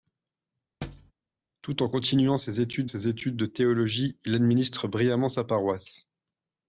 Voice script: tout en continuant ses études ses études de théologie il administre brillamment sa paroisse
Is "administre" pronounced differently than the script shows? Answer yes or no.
no